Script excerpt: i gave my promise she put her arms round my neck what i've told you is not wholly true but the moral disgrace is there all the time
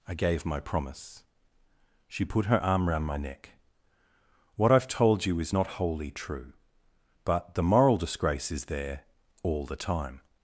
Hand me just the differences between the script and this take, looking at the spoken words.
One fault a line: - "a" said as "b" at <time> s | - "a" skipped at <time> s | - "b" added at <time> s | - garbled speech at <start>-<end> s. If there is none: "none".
- "arms" said as "arm" at 2.6 s